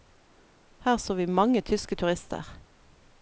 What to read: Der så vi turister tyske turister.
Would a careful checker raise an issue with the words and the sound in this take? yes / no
yes